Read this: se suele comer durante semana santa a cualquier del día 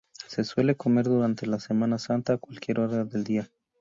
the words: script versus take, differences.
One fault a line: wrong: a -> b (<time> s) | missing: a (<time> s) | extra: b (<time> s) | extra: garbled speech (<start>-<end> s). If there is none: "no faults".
extra: la (1.4 s)
extra: hora (2.8 s)